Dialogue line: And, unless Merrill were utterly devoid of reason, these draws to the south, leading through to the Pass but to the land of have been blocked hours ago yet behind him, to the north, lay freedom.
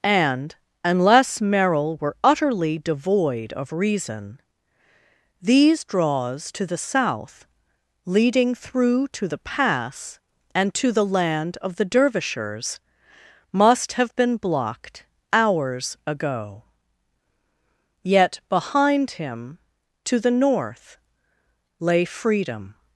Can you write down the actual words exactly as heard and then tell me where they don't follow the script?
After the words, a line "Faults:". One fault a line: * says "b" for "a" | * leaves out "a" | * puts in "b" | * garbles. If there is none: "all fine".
And, unless Merrill were utterly devoid of reason, these draws to the south, leading through to the Pass and to the land of the Dervishers, must have been blocked hours ago yet behind him, to the north, lay freedom.
Faults:
* says "and" for "but"
* puts in "the Dervishers must"